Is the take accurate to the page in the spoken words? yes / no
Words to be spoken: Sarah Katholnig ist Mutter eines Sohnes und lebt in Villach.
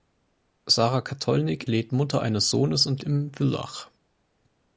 no